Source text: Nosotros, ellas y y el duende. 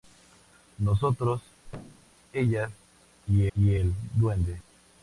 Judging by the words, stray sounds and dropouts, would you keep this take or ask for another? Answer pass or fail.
fail